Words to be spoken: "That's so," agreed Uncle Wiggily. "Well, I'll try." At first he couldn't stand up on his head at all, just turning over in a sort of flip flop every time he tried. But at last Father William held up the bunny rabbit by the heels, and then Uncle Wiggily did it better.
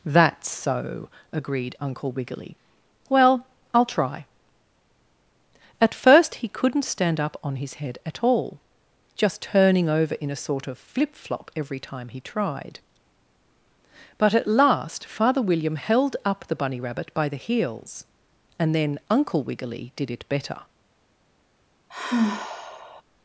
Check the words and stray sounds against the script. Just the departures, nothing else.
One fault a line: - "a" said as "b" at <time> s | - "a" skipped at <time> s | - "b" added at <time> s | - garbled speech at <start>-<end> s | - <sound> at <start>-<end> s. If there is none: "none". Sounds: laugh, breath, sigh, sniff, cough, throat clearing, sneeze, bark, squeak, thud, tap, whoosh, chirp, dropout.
- sigh at 21.9-23.0 s